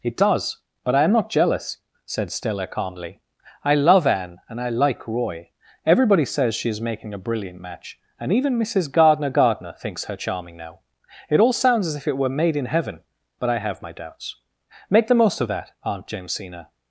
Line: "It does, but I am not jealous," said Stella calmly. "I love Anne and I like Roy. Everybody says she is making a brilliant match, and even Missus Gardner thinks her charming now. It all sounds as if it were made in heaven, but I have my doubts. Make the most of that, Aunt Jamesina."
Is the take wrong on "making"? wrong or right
right